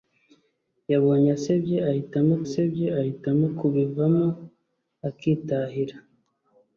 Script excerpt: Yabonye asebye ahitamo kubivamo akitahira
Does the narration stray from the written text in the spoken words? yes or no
yes